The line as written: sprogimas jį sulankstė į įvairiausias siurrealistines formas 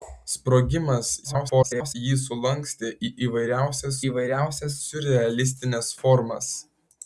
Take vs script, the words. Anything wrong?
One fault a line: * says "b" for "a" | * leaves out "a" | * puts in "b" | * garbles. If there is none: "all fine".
* garbles
* puts in "įvairiausias"